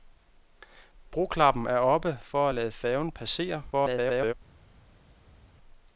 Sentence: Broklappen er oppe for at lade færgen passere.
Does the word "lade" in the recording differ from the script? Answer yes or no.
no